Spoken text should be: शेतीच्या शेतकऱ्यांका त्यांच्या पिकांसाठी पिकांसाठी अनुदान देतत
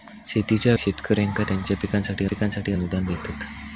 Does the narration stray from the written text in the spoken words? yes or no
no